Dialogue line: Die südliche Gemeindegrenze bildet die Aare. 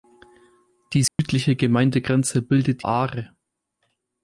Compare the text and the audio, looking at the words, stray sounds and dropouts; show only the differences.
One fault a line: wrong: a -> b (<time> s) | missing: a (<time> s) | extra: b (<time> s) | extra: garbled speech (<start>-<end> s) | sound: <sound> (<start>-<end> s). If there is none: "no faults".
sound: dropout (1.1-1.2 s)
missing: die (2.8 s)